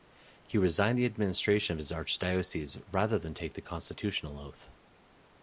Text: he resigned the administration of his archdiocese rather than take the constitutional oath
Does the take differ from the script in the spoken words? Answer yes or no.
no